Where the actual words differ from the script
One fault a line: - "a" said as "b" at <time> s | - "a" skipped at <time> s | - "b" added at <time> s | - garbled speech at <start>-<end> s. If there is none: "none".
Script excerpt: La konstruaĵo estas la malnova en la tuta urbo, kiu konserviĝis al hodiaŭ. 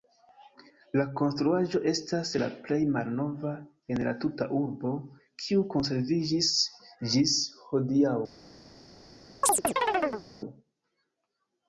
- "plej" added at 2.7 s
- "al" said as "ĝis" at 7.2 s